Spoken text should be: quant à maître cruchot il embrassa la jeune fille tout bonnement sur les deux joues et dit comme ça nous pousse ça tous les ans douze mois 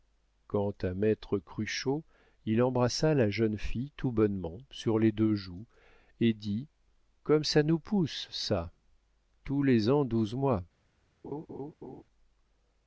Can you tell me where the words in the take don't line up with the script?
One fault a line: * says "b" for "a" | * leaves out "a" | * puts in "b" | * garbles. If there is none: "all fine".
all fine